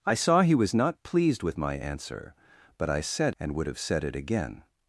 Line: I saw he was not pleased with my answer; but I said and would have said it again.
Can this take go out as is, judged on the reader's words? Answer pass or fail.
pass